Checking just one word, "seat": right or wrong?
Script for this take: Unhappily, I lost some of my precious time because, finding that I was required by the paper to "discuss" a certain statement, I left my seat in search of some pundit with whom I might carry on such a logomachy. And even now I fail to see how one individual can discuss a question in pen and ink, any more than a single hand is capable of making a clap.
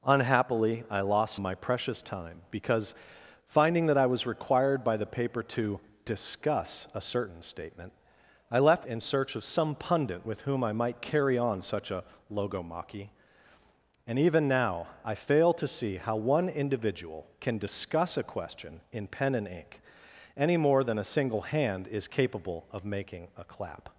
wrong